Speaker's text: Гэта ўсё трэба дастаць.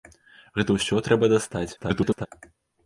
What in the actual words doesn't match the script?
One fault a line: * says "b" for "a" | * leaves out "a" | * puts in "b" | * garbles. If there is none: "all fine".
* garbles